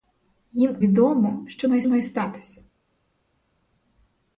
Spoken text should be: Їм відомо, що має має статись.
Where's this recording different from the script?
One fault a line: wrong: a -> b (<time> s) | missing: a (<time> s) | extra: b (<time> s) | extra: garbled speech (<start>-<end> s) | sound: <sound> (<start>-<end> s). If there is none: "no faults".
no faults